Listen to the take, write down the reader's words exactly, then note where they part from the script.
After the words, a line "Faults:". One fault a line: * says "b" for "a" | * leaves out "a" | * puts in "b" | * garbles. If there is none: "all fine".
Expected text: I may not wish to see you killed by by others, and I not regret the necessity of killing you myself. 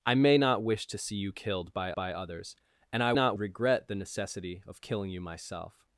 I may not wish to see you killed by by others, and I not regret the necessity of killing you myself.
Faults:
all fine